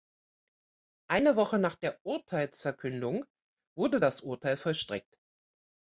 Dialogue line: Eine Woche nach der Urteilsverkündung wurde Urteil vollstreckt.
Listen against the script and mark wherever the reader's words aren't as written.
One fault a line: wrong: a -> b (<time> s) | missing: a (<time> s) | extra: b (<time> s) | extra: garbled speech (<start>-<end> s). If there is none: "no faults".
extra: das (4.0 s)